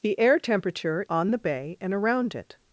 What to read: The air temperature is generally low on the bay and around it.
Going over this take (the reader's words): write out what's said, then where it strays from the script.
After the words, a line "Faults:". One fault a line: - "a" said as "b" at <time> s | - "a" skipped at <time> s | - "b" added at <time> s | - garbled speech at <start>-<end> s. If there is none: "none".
The air temperature on the bay and around it.
Faults:
- "is generally low" skipped at 1.1 s